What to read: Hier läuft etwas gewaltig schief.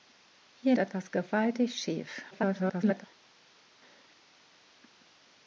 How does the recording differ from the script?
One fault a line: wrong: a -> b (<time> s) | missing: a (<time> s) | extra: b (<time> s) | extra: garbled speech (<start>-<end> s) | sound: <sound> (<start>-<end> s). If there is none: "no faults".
missing: läuft (0.8 s)
extra: garbled speech (2.3-3.0 s)